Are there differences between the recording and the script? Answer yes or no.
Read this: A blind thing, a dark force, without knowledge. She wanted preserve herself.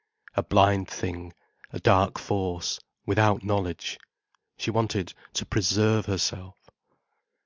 yes